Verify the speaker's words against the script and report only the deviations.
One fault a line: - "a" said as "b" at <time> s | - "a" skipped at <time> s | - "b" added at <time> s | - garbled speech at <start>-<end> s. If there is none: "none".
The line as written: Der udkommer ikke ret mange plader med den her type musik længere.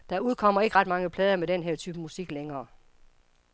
none